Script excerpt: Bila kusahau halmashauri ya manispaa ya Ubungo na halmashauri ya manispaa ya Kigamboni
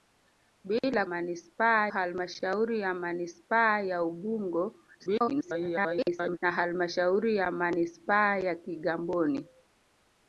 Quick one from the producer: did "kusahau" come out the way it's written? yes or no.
no